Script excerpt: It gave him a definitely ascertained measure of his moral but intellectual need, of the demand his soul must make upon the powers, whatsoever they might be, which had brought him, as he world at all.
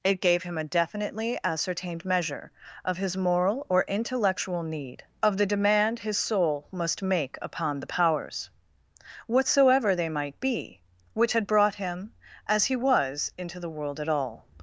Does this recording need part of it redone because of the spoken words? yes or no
yes